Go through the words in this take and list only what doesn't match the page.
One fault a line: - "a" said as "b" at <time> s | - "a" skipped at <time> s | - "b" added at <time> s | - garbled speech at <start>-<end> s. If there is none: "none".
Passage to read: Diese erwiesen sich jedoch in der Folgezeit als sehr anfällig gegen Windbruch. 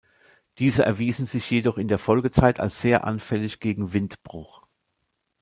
none